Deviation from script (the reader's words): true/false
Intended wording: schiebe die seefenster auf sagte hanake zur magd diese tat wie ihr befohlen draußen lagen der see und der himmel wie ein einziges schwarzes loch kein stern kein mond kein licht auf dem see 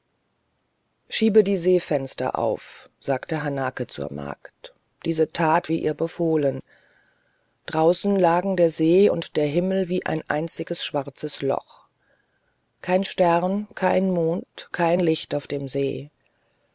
false